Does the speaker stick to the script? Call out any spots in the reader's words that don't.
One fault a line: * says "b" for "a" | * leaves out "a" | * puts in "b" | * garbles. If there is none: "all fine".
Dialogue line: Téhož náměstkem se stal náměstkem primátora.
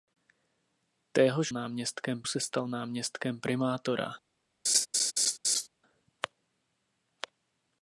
all fine